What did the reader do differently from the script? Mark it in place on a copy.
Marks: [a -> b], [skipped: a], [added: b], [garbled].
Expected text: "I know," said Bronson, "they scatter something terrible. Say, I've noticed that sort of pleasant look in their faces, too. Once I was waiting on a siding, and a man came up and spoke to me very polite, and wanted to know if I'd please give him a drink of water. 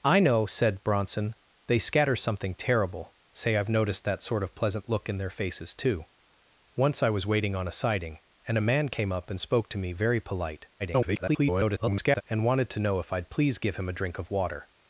"I know," said Bronson, "they scatter something terrible. Say, I've noticed that sort of pleasant look in their faces, too. Once I was waiting on a siding, and a man came up and spoke to me very polite, [garbled] and wanted to know if I'd please give him a drink of water.